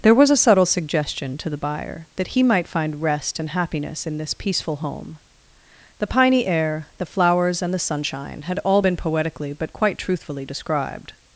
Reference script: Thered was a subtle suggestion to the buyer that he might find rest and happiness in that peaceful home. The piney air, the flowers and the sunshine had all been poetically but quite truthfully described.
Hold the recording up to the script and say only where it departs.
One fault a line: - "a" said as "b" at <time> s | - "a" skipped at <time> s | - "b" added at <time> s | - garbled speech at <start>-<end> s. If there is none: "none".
- "Thered" said as "There" at 0.0 s
- "that" said as "this" at 4.2 s